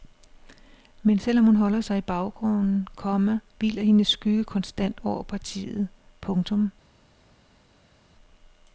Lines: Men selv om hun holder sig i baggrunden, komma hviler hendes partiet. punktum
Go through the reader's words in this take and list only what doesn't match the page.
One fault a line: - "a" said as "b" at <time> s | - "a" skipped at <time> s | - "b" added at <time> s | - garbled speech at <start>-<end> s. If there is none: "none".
- "skygge konstant over" added at 4.1 s